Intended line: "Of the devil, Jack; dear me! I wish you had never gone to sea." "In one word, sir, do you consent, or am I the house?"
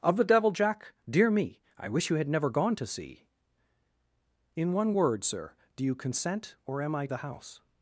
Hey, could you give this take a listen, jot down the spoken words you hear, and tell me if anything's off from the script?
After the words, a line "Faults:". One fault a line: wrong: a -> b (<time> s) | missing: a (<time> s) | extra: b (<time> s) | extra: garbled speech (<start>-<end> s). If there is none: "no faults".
"Of the devil, Jack; dear me! I wish you had never gone to sea." "In one word, sir, do you consent, or am I the house?"
Faults:
no faults